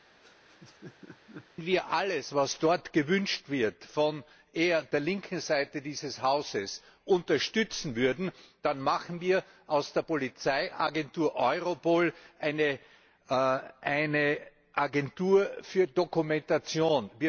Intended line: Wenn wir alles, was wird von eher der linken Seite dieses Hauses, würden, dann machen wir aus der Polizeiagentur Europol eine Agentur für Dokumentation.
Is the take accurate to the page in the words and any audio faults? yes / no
no